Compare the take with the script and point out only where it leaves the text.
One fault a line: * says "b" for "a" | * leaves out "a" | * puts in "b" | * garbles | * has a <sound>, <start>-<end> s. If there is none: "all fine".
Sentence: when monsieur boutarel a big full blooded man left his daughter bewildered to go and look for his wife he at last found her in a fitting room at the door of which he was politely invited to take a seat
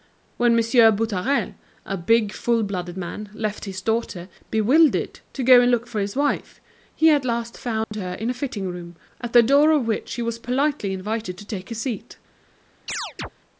* has a dropout, 7.8-7.9 s
* has a chirp, 12.9-13.3 s